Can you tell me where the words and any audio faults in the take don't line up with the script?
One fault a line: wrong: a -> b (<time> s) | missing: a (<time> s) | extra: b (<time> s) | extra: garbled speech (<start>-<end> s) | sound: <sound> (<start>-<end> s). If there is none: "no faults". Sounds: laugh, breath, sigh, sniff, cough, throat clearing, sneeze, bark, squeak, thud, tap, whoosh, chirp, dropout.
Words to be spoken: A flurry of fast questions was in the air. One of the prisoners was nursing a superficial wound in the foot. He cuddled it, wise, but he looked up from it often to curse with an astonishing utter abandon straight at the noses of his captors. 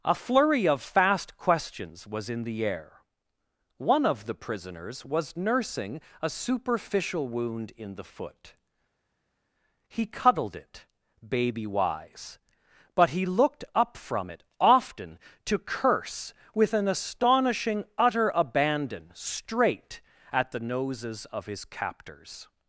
extra: baby (11.3 s)